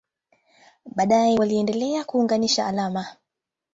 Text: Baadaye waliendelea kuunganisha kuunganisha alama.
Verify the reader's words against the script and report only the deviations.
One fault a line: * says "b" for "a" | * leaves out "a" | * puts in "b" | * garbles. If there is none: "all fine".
* leaves out "kuunganisha"